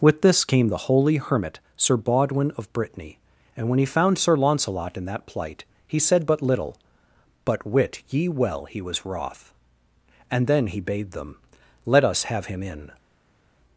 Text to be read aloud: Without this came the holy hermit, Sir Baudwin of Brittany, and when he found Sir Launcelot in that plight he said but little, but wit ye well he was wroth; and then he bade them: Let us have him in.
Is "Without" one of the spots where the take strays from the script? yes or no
yes